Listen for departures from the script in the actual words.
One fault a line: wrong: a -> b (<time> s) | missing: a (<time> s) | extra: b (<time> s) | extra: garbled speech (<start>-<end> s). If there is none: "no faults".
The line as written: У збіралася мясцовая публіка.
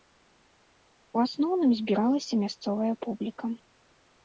extra: асноўным (1.2 s)